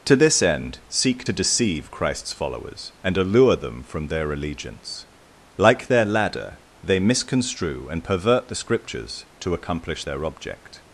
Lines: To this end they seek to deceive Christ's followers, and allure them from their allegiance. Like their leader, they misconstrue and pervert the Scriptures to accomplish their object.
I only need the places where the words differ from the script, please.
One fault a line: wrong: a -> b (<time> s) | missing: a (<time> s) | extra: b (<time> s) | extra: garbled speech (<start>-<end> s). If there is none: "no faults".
missing: they (0.8 s)
wrong: leader -> ladder (6.0 s)